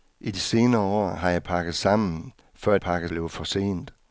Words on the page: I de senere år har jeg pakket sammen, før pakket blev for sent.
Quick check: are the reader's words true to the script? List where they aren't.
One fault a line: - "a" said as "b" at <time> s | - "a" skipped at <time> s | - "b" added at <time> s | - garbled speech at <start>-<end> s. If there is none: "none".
none